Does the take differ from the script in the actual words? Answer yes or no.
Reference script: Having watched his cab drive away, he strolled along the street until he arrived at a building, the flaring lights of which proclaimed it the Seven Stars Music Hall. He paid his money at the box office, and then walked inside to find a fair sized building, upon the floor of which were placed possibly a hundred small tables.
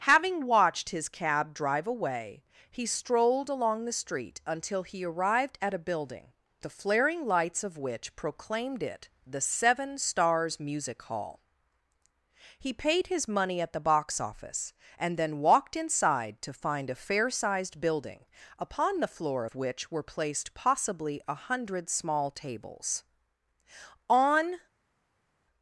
yes